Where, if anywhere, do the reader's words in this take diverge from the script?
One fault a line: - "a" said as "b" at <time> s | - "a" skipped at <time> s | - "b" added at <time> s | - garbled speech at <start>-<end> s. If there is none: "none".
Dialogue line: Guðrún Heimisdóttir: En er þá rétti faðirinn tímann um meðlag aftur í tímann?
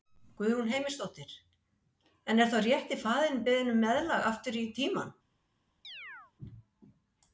- "tímann" said as "beðinn" at 3.5 s